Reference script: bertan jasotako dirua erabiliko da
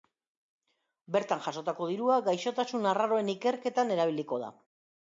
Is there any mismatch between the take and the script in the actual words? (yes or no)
yes